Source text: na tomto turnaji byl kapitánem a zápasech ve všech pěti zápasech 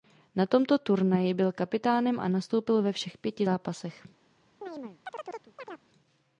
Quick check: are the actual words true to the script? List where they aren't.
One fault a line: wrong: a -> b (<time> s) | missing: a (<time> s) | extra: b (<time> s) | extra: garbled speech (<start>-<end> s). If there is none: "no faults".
wrong: zápasech -> nastoupil (2.3 s)